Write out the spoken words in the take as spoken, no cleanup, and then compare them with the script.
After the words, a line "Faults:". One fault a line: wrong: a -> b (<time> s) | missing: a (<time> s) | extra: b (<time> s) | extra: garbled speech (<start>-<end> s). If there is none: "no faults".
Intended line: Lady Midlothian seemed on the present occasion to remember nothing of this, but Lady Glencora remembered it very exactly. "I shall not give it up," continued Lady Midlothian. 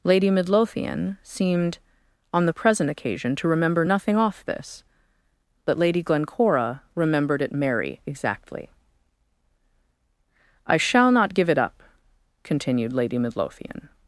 Lady Midlothian seemed on the present occasion to remember nothing off this, but Lady Glencora remembered it merry exactly. "I shall not give it up," continued Lady Midlothian.
Faults:
wrong: of -> off (4.2 s)
wrong: very -> merry (7.5 s)